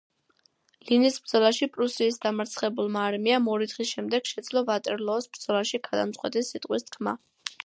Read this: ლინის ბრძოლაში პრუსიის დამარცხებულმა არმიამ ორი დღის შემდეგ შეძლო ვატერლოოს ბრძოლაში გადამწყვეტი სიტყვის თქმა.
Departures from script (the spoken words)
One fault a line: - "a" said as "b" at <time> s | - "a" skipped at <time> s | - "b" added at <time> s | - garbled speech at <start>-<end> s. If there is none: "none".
none